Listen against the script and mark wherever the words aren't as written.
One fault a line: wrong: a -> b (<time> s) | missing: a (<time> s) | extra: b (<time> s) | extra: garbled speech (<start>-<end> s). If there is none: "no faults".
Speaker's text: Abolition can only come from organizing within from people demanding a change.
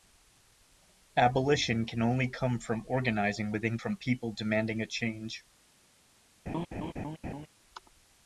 no faults